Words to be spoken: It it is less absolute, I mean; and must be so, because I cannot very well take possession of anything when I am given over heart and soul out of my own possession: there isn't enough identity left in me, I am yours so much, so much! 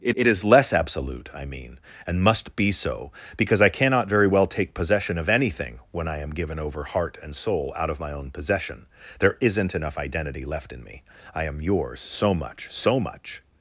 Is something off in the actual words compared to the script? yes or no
no